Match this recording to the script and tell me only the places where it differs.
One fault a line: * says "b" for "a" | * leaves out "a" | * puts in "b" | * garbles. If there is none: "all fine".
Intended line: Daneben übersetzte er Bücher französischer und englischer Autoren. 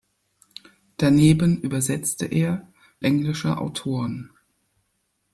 * leaves out "Bücher französischer und"